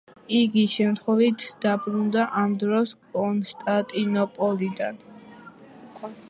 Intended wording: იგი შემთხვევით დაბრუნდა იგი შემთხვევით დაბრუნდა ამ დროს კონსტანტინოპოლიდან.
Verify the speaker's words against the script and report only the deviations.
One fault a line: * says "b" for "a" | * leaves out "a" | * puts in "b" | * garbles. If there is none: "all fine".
* leaves out "იგი შემთხვევით დაბრუნდა"